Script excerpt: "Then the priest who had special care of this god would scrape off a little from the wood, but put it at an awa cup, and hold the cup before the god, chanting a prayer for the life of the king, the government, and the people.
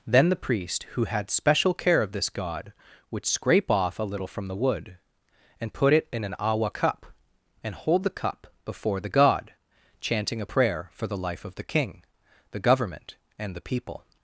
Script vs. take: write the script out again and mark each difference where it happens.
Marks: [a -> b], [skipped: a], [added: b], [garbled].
"Then the priest who had special care of this god would scrape off a little from the wood, [but -> and] put it [at -> in] an awa cup, and hold the cup before the god, chanting a prayer for the life of the king, the government, and the people.